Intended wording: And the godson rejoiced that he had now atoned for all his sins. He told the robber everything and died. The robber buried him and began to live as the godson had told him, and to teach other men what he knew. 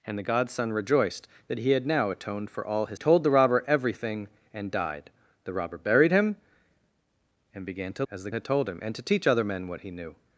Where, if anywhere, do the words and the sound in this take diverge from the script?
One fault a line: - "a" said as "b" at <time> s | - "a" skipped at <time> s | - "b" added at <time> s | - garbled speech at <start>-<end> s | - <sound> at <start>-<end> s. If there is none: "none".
- "sins He" skipped at 3.0 s
- "live" skipped at 8.0 s
- "godson" skipped at 8.3 s